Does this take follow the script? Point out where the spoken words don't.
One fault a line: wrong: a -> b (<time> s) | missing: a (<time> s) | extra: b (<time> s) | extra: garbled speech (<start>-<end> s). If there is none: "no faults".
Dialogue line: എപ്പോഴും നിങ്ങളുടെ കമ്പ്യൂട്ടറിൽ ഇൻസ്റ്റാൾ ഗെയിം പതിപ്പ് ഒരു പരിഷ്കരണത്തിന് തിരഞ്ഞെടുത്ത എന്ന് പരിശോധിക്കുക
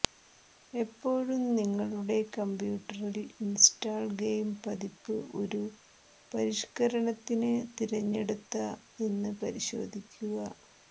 no faults